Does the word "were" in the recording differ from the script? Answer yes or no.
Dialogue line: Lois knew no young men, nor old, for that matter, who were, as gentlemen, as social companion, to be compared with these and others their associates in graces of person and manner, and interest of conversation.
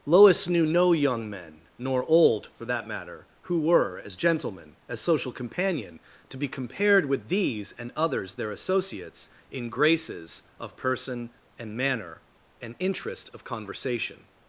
no